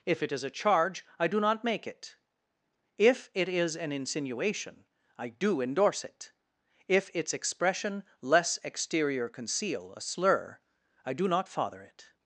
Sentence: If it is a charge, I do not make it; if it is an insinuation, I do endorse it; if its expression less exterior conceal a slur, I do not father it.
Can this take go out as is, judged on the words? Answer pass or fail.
pass